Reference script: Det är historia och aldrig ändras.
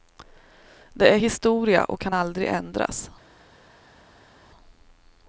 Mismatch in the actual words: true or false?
true